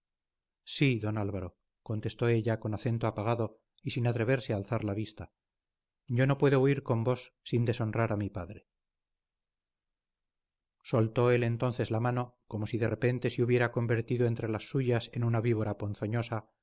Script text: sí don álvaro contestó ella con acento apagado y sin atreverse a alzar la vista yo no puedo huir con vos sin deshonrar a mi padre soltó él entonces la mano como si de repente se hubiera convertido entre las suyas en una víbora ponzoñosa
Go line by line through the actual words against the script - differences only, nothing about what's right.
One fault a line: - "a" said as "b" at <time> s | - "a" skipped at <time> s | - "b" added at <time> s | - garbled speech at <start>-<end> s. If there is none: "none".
none